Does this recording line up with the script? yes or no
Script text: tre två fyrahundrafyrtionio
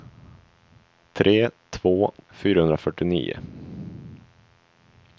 yes